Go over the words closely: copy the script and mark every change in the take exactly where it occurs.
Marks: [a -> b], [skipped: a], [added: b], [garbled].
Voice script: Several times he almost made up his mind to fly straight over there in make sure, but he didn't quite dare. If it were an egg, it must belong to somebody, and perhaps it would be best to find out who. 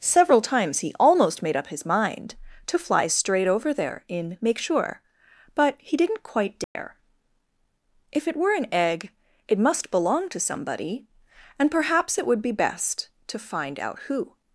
Several times he almost made up his mind to fly straight over there in make sure, but he didn't quite dare. If it were an egg, it must belong to somebody, and perhaps it would be best to find out who.